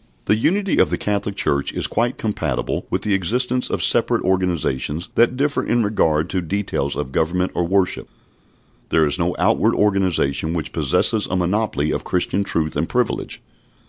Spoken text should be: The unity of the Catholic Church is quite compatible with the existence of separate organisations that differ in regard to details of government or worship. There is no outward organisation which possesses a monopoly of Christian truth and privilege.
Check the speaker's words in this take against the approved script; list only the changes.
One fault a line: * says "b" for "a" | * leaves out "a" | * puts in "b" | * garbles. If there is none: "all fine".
all fine